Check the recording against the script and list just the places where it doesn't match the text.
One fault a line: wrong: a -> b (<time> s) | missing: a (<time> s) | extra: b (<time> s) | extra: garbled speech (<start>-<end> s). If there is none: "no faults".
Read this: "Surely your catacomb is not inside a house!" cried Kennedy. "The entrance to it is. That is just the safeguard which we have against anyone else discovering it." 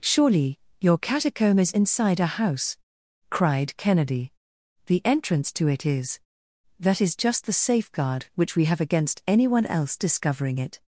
missing: not (1.7 s)